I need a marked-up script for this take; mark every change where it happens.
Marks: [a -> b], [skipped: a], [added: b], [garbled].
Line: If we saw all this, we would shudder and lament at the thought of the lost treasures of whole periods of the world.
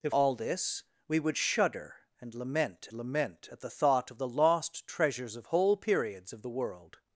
If [skipped: we saw] all this, we would shudder and lament [added: lament] at the thought of the lost treasures of whole periods of the world.